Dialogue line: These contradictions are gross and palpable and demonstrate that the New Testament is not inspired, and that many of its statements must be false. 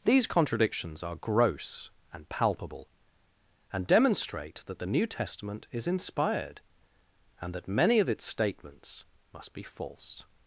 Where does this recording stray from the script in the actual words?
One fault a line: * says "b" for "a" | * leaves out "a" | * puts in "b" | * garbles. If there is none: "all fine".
* leaves out "not"